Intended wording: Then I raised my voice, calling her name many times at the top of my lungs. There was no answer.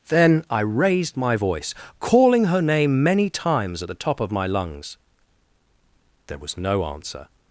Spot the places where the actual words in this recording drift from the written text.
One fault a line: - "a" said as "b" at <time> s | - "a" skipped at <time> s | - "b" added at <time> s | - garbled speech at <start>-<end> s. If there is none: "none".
none